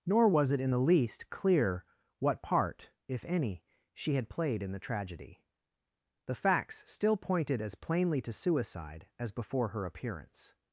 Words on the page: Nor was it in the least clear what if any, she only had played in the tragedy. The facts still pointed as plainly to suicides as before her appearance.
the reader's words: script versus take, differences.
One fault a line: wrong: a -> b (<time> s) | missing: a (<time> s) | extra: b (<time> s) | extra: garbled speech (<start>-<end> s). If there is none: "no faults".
extra: part (2.4 s)
missing: only (4.1 s)
wrong: suicides -> suicide (8.3 s)